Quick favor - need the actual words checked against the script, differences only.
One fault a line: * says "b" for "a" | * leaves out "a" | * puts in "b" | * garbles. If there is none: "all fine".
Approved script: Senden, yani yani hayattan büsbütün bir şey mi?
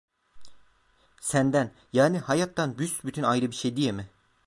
* leaves out "yani"
* puts in "ayrı"
* puts in "diye"